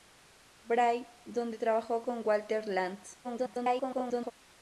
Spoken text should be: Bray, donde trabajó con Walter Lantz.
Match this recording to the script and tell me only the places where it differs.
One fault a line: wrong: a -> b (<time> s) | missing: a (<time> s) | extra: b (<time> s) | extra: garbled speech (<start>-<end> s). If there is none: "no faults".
extra: garbled speech (3.2-4.3 s)